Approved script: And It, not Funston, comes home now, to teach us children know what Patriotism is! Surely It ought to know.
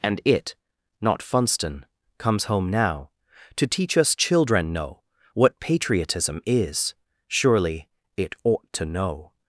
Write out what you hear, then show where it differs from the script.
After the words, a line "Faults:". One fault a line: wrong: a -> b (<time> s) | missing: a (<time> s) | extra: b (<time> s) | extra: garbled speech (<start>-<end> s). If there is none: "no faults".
And It, not Funston, comes home now, to teach us children know what Patriotism is! Surely It ought to know.
Faults:
no faults